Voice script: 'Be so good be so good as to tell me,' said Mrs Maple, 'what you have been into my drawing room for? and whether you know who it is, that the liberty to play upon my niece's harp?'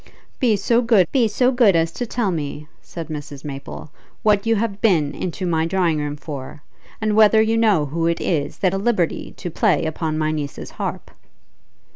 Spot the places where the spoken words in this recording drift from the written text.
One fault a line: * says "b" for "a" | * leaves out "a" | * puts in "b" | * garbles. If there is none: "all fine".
all fine